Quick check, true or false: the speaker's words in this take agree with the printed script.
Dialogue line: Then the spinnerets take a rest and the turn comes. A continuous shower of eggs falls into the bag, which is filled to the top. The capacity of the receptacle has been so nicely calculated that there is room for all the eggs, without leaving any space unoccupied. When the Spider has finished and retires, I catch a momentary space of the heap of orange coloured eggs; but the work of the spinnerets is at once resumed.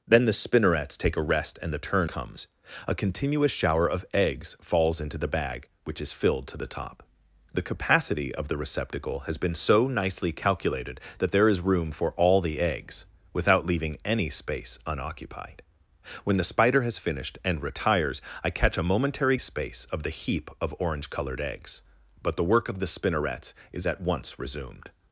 true